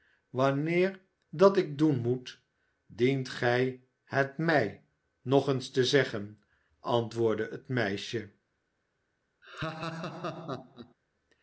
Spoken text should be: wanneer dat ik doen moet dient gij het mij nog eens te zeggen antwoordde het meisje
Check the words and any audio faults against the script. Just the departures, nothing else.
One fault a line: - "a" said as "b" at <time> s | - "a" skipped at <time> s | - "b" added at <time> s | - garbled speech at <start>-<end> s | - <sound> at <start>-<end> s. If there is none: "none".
- laugh at 9.4-10.9 s